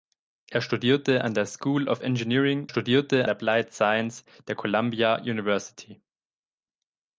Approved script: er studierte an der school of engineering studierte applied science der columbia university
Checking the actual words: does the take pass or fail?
pass